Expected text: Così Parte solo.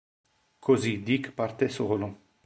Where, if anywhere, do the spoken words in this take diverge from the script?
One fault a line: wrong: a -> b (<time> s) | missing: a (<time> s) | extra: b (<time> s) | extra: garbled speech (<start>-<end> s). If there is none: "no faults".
extra: Dick (1.0 s)